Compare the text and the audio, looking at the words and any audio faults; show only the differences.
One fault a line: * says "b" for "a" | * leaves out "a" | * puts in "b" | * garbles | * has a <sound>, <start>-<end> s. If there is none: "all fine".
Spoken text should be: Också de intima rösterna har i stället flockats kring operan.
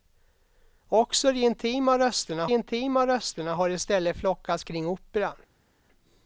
* puts in "intima rösterna"